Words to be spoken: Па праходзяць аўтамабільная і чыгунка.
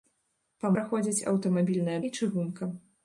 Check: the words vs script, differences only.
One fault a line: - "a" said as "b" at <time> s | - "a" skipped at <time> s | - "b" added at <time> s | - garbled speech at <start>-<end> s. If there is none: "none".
none